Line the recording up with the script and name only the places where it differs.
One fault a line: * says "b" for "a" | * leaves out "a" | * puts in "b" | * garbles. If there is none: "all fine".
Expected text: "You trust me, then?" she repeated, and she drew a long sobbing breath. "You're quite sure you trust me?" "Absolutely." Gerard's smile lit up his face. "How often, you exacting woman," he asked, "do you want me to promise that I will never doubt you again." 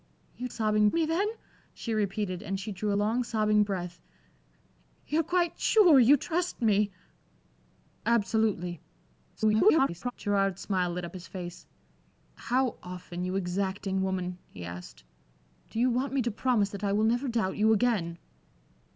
* says "sobbing" for "trust"
* garbles